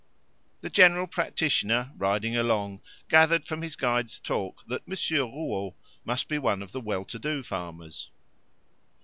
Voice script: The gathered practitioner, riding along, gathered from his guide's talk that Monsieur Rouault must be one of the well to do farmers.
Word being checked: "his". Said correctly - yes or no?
yes